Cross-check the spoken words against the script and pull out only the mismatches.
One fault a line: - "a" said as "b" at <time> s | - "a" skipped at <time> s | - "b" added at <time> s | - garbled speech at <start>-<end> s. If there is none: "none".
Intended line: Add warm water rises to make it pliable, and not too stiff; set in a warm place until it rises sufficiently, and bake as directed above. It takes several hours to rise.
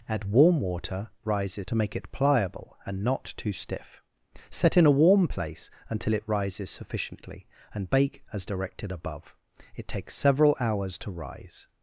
none